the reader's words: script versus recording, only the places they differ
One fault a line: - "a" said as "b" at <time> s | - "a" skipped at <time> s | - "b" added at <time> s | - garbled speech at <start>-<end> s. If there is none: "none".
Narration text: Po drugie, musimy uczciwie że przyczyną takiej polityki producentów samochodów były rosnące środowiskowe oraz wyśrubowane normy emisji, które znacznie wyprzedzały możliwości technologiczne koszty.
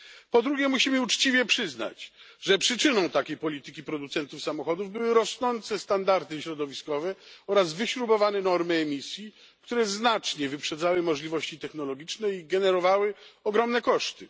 - "przyznać" added at 1.4 s
- "standardy" added at 5.8 s
- "i generowały ogromne" added at 12.3 s